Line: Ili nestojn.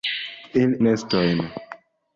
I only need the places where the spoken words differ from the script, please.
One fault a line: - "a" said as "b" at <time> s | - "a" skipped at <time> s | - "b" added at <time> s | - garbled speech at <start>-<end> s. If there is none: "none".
none